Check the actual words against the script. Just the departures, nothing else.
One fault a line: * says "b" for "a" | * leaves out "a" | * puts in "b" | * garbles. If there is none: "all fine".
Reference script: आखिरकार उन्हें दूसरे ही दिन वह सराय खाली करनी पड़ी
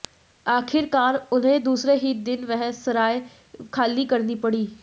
all fine